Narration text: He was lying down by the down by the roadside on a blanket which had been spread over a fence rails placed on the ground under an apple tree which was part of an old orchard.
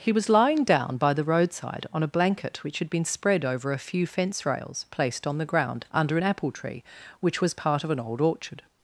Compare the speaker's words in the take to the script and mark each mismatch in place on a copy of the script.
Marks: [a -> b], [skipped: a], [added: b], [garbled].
He was lying down by the [skipped: down by the] roadside on a blanket which had been spread over a [added: few] fence rails placed on the ground under an apple tree which was part of an old orchard.